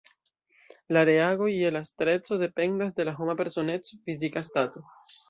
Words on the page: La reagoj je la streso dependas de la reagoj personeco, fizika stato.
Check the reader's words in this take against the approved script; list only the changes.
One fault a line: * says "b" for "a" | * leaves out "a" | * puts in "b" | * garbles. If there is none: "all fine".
* says "homa" for "reagoj"